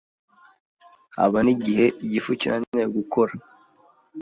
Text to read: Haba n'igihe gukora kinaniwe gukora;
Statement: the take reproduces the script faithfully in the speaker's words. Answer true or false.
false